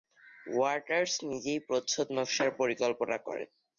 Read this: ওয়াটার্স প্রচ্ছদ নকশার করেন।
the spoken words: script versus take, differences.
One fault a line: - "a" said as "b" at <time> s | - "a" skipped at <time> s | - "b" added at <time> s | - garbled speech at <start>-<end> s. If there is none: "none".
- "নিজেই" added at 1.3 s
- "পরিকল্পনা" added at 2.6 s